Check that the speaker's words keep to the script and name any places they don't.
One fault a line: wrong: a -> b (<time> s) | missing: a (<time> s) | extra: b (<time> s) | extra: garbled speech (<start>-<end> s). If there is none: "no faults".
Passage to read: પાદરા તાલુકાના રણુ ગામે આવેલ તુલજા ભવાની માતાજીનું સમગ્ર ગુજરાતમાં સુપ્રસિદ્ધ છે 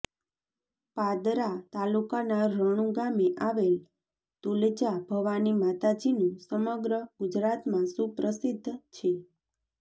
no faults